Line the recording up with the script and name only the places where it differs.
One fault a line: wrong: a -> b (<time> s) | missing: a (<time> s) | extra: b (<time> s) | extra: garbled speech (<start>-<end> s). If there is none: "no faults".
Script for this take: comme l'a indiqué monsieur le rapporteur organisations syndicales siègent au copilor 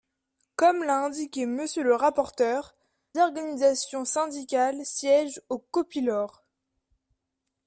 no faults